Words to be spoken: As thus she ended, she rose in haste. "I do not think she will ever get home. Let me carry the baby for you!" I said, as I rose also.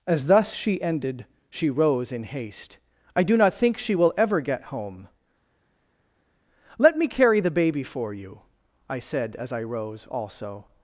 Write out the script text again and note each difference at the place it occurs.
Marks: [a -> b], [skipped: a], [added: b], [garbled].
As thus she ended, she rose in haste. "I do not think she will ever get home. Let me carry the baby for you!" I said, as I rose also.